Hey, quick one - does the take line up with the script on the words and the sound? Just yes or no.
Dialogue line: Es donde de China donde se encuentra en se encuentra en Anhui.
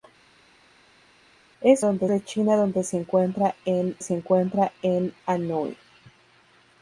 yes